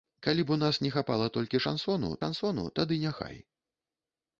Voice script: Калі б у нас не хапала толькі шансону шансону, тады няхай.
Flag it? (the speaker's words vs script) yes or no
no